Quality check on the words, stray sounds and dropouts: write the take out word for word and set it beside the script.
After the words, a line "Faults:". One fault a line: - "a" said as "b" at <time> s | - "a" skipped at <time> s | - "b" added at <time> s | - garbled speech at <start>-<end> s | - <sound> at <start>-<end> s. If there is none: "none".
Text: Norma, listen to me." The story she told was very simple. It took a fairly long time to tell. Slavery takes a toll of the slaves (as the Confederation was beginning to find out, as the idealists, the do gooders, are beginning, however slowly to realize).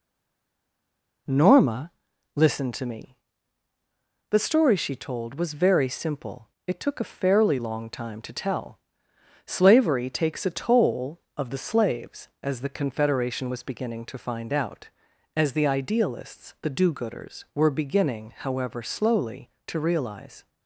Norma, listen to me." The story she told was very simple. It took a fairly long time to tell. Slavery takes a toll of the slaves (as the Confederation was beginning to find out, as the idealists, the do gooders, were beginning, however slowly to realize).
Faults:
- "are" said as "were" at 17.5 s